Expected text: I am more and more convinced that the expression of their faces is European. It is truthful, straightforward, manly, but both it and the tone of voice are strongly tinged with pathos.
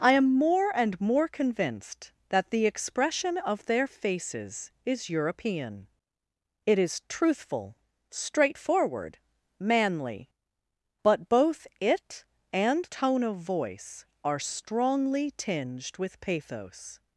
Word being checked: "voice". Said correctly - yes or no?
yes